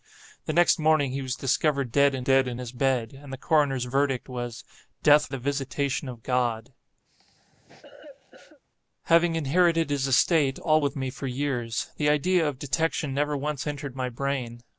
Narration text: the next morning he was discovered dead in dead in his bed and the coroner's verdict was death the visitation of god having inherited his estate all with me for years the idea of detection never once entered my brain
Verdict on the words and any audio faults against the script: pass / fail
fail